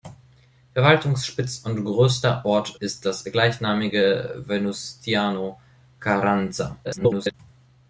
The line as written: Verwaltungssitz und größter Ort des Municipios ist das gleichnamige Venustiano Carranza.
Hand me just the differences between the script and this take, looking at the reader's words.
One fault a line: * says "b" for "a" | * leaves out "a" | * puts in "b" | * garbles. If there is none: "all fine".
* leaves out "des Municipios"
* garbles